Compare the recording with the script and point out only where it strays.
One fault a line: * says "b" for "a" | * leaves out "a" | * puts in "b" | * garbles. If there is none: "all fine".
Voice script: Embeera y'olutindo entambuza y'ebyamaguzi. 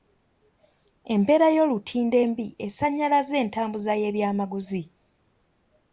* puts in "embi esannyalazza"